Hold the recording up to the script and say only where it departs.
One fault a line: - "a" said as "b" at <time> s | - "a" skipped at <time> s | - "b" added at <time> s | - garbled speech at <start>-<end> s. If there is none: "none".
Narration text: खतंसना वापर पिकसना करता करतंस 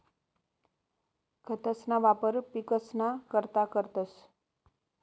none